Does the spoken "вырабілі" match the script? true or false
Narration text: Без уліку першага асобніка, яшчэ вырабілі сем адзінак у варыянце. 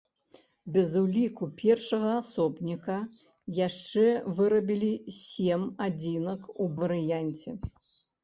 true